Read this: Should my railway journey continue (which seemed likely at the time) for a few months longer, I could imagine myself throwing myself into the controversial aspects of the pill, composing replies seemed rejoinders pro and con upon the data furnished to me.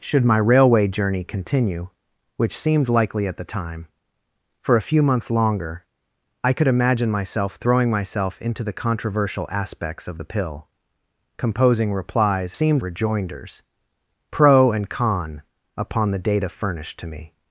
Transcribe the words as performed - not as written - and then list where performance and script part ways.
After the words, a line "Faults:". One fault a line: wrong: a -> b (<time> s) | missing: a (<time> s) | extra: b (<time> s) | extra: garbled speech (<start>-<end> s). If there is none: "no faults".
Should my railway journey continue (which seemed likely at the time) for a few months longer, I could imagine myself throwing myself into the controversial aspects of the pill, composing replies seemed rejoinders pro and con upon the data furnished to me.
Faults:
no faults